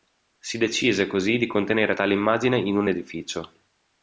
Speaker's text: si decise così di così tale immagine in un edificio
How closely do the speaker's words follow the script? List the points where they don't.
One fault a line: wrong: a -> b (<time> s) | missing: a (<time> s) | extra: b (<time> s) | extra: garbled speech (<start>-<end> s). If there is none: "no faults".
wrong: così -> contenere (1.5 s)